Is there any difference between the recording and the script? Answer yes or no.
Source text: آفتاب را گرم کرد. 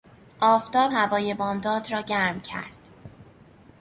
yes